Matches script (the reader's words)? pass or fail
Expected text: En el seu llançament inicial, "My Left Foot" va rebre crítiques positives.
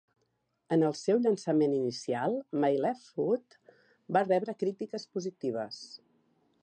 pass